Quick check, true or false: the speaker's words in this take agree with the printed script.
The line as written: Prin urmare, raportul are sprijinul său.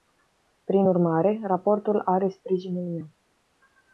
false